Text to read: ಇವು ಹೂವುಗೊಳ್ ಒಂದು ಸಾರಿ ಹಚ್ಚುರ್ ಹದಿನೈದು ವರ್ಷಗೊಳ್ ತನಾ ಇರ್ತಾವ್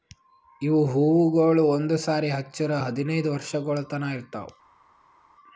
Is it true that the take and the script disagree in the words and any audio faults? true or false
false